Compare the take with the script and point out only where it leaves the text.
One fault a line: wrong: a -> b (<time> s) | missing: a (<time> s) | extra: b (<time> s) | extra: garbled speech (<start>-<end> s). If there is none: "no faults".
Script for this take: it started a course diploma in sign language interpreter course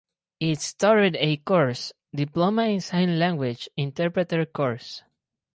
no faults